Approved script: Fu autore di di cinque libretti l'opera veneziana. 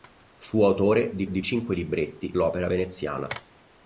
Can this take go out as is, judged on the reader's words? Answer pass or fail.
pass